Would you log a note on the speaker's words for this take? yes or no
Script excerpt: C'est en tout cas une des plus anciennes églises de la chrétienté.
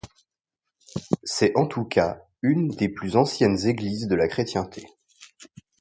no